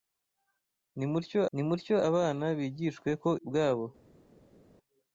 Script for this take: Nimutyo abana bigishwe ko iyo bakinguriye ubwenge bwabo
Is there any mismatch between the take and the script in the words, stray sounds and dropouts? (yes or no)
yes